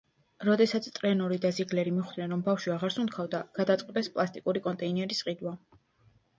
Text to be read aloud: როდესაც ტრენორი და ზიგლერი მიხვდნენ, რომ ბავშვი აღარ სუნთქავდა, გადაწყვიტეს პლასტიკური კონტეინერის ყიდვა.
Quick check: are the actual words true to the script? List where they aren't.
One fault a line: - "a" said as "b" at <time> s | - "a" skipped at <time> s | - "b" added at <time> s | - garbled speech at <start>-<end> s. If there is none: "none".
none